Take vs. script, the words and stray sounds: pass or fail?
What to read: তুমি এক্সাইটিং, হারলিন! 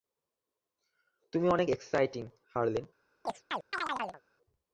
fail